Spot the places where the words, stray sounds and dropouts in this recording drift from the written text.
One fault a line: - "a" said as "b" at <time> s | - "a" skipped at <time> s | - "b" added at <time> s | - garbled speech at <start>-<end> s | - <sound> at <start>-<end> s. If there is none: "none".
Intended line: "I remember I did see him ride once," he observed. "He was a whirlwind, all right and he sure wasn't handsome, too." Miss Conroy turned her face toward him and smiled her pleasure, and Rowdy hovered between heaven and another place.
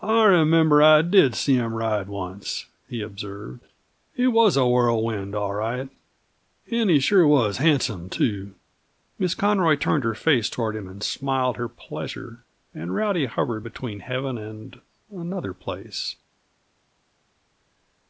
- "wasn't" said as "was" at 7.3 s